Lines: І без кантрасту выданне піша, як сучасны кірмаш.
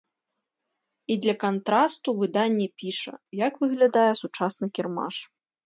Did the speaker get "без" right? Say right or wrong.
wrong